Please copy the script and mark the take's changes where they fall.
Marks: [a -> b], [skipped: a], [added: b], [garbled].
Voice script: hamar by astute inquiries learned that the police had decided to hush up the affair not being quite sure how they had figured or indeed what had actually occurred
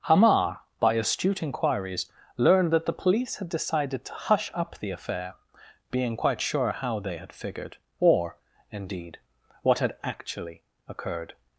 hamar by astute inquiries learned that the police had decided to hush up the affair [skipped: not] being quite sure how they had figured or indeed what had actually occurred